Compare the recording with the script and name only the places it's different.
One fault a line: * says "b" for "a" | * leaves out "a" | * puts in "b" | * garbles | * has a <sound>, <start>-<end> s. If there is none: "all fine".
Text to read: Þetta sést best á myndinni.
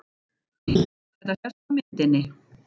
* has a laugh, 0.7-0.9 s
* leaves out "sést"